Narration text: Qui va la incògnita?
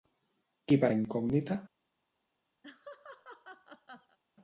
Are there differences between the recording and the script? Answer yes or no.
no